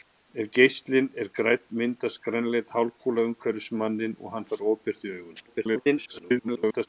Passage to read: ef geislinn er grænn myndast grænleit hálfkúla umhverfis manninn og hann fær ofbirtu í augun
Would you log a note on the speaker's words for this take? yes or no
yes